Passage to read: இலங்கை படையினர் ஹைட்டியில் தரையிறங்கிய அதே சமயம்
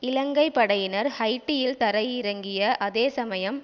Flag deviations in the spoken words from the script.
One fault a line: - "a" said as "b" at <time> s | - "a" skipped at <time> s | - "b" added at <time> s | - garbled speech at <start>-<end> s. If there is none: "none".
none